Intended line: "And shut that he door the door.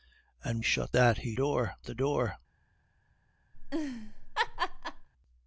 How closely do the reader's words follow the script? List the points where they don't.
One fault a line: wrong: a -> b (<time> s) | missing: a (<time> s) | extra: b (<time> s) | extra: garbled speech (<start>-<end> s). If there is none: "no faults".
no faults